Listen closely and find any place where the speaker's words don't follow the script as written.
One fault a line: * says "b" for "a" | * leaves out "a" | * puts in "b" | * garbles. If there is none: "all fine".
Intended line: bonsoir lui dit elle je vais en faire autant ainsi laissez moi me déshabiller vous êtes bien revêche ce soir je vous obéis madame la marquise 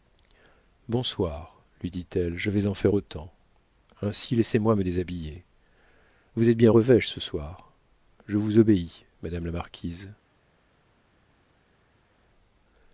all fine